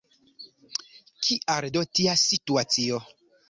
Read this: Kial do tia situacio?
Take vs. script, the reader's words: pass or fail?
pass